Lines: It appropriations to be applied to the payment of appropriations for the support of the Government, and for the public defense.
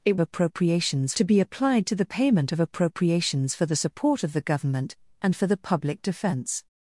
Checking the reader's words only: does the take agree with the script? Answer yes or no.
yes